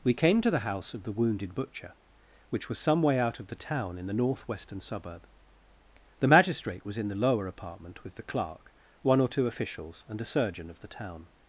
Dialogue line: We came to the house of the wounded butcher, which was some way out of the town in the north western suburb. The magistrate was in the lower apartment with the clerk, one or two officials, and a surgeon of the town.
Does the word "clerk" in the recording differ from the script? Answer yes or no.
no